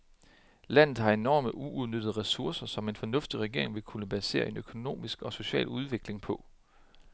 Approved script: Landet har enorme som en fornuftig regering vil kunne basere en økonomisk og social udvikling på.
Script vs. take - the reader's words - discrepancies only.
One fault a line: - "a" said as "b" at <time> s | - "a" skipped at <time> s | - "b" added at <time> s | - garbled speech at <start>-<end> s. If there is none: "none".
- "uudnyttede ressourcer" added at 1.6 s